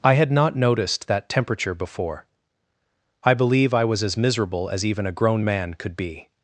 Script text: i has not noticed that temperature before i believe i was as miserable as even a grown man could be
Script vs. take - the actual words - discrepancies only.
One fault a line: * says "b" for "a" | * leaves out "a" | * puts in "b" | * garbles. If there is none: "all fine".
* says "had" for "has"